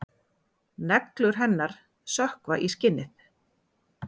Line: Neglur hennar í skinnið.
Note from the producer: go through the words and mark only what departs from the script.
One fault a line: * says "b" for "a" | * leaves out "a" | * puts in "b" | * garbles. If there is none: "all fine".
* puts in "sökkva"